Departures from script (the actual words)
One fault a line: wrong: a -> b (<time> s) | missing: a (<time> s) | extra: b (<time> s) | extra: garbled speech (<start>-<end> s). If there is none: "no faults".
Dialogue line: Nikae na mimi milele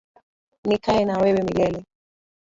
wrong: mimi -> wewe (1.2 s)